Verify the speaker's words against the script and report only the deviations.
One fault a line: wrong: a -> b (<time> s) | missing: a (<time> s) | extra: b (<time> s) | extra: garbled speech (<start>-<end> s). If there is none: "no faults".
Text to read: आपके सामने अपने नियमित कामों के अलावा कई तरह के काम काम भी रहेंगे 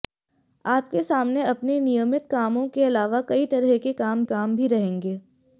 no faults